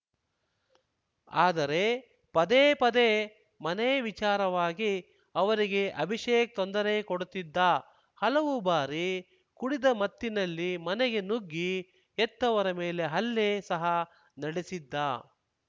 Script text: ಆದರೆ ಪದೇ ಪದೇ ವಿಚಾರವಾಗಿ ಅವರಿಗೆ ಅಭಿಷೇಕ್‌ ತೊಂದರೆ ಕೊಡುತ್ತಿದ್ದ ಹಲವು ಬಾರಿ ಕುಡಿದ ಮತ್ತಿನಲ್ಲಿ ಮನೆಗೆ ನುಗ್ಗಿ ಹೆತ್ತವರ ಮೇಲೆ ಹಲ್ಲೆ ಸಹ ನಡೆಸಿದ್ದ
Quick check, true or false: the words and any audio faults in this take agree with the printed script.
false